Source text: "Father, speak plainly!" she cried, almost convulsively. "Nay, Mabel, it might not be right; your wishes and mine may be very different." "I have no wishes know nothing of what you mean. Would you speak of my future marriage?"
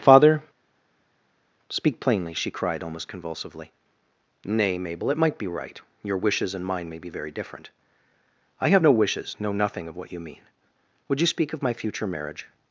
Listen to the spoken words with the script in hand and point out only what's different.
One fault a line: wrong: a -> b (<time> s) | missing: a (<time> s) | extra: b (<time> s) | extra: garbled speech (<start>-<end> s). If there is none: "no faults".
missing: not (5.4 s)